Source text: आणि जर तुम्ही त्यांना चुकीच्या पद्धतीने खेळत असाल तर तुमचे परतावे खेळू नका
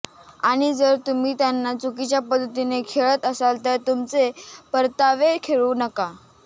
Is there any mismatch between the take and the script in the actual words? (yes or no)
no